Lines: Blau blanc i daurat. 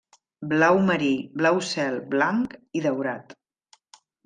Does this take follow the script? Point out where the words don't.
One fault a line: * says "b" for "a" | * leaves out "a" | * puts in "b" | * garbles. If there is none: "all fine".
* puts in "marí blau cel"